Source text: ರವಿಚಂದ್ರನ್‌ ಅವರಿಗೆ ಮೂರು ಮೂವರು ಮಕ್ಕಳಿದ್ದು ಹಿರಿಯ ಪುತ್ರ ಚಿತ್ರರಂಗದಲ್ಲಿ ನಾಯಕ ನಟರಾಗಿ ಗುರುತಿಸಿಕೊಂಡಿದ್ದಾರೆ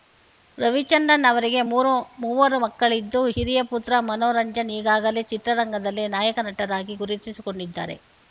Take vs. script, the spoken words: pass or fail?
fail